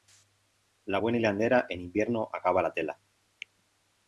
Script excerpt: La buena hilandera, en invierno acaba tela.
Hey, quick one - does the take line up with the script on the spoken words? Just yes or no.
no